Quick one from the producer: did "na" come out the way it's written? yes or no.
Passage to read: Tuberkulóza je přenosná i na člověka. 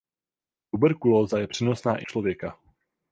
no